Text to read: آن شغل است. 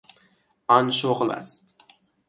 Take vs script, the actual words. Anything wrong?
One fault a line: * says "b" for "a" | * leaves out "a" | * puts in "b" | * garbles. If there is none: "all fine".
all fine